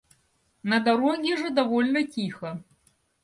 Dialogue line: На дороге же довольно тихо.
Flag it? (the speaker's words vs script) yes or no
no